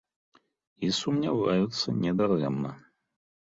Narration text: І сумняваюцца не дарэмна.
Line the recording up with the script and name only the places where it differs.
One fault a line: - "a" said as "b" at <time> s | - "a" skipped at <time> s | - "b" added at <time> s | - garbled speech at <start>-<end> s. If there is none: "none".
none